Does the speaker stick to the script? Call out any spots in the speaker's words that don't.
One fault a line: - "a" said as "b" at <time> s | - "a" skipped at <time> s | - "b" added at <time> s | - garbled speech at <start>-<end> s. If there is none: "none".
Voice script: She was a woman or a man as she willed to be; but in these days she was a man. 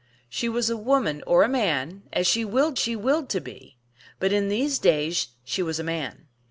- "she willed" added at 2.8 s